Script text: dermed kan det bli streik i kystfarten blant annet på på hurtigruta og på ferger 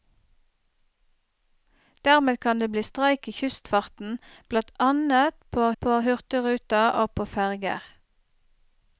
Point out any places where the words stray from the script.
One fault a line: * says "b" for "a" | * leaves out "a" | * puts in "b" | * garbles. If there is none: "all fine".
all fine